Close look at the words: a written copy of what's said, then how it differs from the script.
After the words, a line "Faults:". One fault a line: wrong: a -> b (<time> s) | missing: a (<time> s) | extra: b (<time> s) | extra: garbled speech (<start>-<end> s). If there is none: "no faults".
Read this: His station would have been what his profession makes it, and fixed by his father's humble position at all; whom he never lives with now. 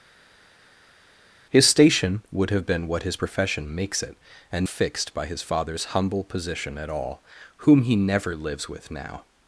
His station would have been what his profession makes it, and fixed by his father's humble position at all; whom he never lives with now.
Faults:
no faults